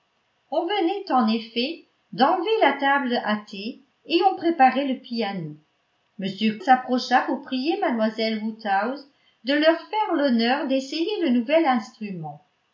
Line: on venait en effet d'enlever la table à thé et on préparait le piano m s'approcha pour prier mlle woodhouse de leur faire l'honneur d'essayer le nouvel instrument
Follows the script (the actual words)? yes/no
yes